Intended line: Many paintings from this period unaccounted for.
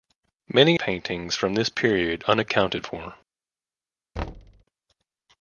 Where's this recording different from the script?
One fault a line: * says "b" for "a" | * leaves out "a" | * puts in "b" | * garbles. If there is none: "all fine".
all fine